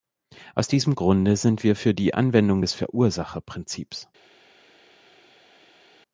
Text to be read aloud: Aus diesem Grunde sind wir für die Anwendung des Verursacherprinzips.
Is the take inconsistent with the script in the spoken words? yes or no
no